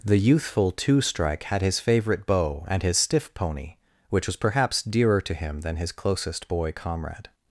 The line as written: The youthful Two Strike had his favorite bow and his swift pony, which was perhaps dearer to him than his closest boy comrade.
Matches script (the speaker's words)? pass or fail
fail